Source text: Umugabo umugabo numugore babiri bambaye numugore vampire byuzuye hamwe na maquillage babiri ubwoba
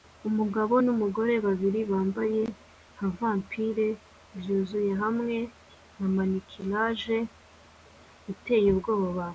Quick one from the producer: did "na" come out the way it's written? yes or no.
yes